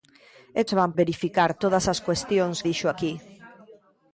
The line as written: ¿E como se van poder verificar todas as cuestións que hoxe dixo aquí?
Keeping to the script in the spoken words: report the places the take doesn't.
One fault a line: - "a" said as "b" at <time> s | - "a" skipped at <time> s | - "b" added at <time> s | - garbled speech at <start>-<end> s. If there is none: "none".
- "como" skipped at 0.6 s
- "poder" skipped at 0.9 s
- "que hoxe" skipped at 2.6 s